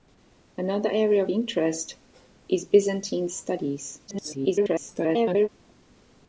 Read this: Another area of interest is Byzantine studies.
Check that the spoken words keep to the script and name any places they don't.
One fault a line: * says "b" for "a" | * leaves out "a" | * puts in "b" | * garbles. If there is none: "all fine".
* leaves out "of"
* garbles